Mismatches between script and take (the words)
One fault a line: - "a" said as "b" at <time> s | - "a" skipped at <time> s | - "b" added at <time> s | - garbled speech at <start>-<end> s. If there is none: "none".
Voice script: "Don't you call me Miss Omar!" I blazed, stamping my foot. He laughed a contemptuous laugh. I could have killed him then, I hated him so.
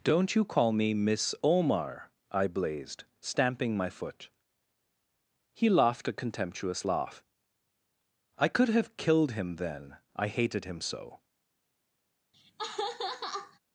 none